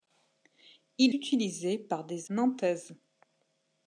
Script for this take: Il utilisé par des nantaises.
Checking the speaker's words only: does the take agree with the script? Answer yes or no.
yes